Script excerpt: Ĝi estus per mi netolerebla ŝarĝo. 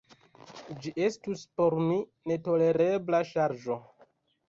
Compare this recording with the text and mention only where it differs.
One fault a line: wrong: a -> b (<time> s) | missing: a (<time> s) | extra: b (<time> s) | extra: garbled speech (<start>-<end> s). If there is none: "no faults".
wrong: per -> por (1.6 s)